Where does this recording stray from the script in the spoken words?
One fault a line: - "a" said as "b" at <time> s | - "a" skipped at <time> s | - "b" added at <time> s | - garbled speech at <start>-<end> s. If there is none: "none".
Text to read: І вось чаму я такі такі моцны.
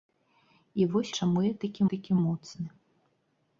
none